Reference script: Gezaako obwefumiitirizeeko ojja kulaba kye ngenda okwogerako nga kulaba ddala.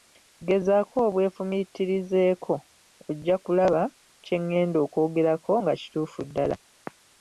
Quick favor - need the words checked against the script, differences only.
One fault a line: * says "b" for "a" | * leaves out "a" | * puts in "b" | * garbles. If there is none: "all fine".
* says "kituufu" for "kulaba"